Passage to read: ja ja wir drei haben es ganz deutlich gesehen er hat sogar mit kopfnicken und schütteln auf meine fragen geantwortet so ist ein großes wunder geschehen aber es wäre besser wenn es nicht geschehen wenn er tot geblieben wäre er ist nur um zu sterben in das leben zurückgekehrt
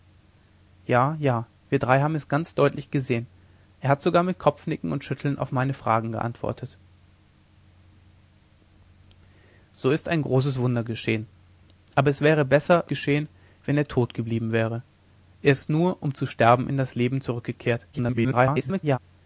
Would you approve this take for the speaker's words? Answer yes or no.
no